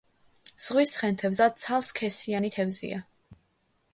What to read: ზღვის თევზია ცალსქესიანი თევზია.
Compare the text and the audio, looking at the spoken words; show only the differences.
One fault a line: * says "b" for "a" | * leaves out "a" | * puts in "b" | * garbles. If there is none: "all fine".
* says "ცხენთევზა" for "თევზია"